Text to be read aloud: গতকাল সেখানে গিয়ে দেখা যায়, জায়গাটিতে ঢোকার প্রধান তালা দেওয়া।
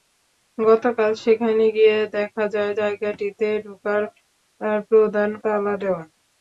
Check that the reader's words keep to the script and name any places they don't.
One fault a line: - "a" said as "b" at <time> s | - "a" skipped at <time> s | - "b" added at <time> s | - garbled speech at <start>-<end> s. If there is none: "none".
none